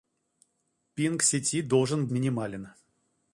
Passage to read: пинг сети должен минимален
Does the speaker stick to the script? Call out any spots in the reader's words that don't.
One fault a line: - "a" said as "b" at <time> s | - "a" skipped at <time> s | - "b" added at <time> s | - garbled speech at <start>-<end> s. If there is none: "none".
none